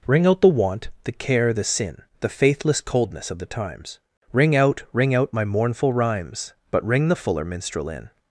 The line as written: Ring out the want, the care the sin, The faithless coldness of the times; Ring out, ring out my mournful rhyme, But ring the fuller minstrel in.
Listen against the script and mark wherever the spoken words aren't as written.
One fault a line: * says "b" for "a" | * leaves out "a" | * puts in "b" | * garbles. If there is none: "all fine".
* says "rhymes" for "rhyme"